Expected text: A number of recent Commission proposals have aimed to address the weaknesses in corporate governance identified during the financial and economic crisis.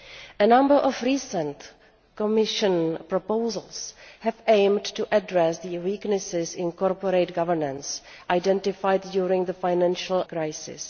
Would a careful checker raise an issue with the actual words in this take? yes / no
yes